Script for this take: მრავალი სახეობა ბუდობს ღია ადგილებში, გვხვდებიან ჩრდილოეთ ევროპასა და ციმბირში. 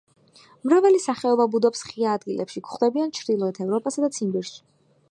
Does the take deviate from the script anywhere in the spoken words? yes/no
no